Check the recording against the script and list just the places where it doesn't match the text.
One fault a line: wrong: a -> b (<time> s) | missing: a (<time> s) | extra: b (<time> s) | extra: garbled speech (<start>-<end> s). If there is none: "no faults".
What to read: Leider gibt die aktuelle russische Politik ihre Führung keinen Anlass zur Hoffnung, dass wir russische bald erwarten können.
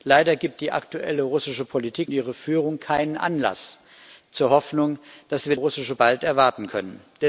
no faults